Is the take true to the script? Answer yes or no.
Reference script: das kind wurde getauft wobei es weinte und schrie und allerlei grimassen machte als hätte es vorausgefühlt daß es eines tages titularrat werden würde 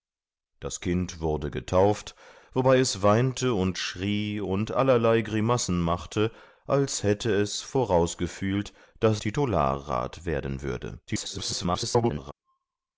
no